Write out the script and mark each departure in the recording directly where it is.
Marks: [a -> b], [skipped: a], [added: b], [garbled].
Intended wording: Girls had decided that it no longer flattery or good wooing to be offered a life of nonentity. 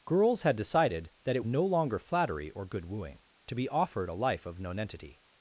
Girls had decided that it no longer flattery or good wooing to be offered a life of nonentity.